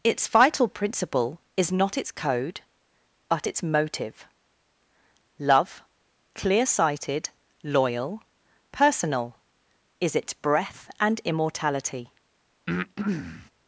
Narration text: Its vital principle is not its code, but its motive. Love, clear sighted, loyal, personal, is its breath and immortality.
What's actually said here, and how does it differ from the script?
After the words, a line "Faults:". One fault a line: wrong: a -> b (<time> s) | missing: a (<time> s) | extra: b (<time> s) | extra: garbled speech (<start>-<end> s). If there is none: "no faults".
Its vital principle is not its code, but its motive. Love, clear sighted, loyal, personal, is its breath and immortality.
Faults:
no faults